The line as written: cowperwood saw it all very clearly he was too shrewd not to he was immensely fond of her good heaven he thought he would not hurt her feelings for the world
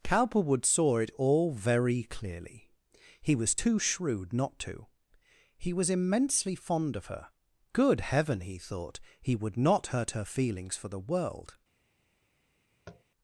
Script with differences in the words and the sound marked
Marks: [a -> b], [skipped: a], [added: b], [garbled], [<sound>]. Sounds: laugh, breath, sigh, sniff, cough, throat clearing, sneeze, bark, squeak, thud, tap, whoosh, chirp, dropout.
cowperwood saw it all very clearly he was too shrewd not to he was immensely fond of her good heaven he thought he would not hurt her feelings for the world [tap]